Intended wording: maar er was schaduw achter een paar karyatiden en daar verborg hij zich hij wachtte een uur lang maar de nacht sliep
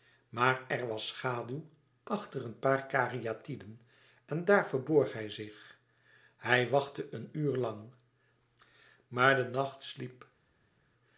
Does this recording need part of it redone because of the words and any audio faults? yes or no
no